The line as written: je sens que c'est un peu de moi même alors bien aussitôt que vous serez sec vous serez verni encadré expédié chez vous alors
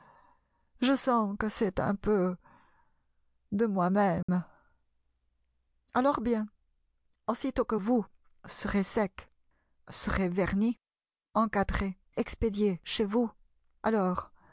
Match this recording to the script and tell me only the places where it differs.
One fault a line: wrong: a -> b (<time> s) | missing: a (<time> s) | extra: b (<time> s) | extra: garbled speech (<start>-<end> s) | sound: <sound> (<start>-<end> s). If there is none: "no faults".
sound: dropout (4.2-4.3 s)
missing: vous (9.3 s)